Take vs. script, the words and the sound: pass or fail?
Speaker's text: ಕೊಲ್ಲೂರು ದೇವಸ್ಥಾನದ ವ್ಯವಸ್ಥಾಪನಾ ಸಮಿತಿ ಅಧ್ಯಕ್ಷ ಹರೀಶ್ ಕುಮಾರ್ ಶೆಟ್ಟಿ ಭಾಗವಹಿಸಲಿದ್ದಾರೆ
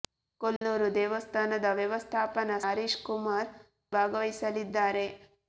fail